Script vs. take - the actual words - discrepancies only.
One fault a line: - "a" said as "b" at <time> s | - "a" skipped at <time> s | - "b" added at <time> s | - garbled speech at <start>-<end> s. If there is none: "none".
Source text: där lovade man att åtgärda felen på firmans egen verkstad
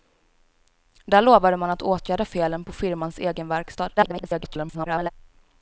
- garbled speech at 4.0-5.1 s